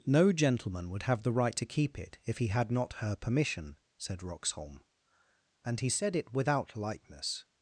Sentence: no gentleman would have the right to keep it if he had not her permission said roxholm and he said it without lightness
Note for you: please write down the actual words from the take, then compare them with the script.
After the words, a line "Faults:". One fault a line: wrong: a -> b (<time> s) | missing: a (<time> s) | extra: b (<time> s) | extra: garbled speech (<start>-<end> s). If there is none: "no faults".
no gentleman would have the right to keep it if he had not her permission said roxholm and he said it without lightness
Faults:
no faults